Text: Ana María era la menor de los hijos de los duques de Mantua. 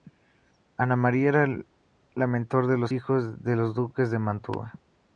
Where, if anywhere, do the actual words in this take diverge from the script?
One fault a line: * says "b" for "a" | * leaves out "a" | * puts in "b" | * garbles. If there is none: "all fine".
all fine